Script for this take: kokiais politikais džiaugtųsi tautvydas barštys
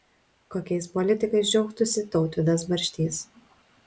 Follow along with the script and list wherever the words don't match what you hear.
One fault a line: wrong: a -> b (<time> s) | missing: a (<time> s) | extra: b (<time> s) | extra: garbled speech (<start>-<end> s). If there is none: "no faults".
no faults